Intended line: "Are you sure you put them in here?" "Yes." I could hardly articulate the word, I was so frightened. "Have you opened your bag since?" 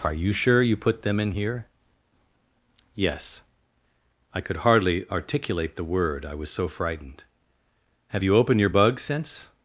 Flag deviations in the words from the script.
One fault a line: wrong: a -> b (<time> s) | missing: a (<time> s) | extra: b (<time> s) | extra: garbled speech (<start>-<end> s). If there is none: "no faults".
wrong: bag -> bug (8.7 s)